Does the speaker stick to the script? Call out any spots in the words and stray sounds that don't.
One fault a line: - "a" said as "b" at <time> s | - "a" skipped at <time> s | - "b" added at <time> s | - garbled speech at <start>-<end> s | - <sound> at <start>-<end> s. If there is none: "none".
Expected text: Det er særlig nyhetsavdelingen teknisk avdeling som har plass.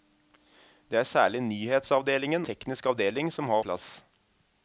none